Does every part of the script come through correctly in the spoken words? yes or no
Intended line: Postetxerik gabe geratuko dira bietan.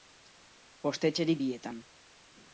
no